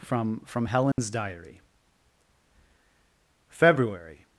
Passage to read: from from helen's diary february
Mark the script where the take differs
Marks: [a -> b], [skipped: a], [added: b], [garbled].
from from helen's diary february